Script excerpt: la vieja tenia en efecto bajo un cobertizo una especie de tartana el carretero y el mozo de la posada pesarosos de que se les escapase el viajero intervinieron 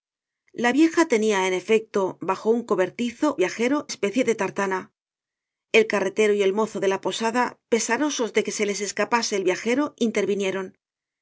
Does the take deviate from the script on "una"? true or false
true